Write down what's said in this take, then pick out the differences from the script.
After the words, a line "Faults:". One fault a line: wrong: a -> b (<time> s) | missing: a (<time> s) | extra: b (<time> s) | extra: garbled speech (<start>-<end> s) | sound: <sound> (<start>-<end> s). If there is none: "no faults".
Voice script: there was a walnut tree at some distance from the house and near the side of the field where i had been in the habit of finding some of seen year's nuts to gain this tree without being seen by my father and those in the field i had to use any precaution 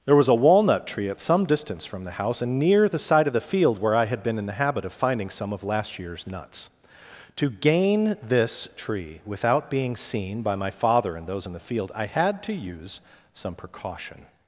there was a walnut tree at some distance from the house and near the side of the field where i had been in the habit of finding some of last year's nuts to gain this tree without being seen by my father and those in the field i had to use some precaution
Faults:
wrong: seen -> last (5.6 s)
wrong: any -> some (13.3 s)